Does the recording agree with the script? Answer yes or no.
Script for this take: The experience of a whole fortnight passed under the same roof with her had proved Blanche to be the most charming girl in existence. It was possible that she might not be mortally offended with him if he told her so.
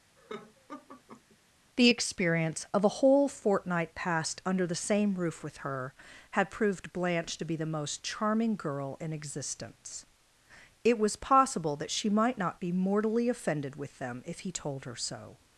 no